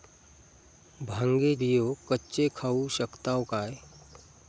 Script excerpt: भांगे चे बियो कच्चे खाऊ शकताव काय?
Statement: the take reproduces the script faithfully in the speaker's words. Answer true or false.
false